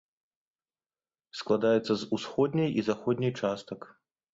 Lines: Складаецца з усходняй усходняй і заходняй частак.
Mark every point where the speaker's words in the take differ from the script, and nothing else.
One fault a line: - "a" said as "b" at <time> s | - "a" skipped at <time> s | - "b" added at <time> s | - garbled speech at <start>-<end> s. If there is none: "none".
- "усходняй" skipped at 2.7 s